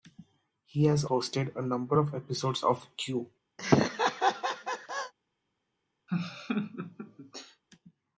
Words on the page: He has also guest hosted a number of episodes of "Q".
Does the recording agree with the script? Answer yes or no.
no